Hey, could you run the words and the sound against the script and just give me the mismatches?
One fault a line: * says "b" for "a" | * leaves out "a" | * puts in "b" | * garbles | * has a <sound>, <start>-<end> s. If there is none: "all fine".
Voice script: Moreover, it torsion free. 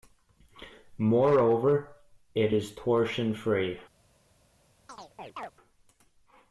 * puts in "is"
* has a chirp, 4.9-5.5 s